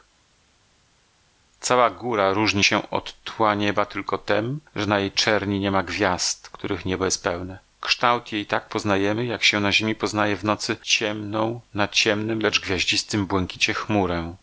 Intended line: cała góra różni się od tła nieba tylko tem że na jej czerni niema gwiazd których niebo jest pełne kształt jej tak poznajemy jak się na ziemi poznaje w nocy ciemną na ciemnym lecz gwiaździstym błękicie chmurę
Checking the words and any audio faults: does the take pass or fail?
pass